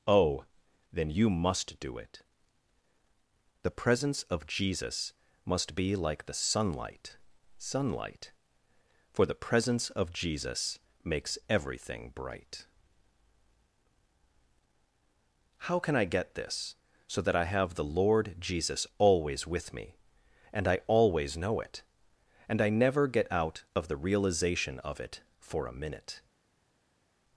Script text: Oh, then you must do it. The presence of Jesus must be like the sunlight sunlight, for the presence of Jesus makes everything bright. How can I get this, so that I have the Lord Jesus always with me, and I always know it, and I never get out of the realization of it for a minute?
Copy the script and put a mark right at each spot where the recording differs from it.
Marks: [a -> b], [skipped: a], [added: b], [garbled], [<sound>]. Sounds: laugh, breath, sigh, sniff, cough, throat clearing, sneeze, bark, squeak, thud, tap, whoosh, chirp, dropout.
Oh, then you must do it. The presence of Jesus must be like the sunlight sunlight, for the presence of Jesus makes everything bright. How can I get this, so that I have the Lord Jesus always with me, and I always know it, and I never get out of the realization of it for a minute?